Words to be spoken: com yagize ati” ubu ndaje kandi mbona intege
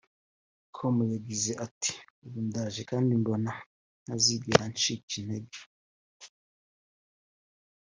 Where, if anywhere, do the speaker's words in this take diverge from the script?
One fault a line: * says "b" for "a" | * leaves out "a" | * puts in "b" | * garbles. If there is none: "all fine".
* puts in "ntazigera ncika"